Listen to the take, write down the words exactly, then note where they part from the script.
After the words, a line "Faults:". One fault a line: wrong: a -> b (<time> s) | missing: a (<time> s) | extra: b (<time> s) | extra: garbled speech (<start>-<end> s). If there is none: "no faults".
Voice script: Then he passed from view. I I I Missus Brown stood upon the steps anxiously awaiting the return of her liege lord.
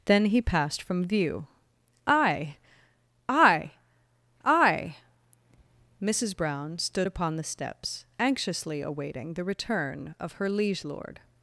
Then he passed from view. I I I Missus Brown stood upon the steps anxiously awaiting the return of her liege lord.
Faults:
no faults